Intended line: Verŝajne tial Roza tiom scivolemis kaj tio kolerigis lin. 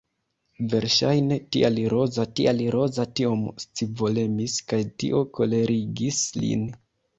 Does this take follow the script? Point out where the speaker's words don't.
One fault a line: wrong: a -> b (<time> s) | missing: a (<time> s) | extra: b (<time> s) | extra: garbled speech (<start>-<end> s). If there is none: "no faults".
extra: tial Roza (2.4 s)